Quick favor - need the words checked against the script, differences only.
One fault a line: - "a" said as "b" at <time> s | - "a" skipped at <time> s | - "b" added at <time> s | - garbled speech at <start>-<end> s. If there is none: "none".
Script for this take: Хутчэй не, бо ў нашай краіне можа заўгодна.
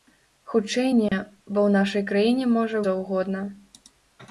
none